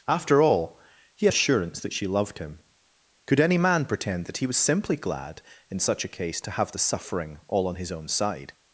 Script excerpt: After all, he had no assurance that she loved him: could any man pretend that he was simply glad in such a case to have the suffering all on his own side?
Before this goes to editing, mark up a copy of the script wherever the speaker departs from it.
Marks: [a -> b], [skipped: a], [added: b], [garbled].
After all, he [skipped: had no] assurance that she loved him: could any man pretend that he was simply glad in such a case to have the suffering all on his own side?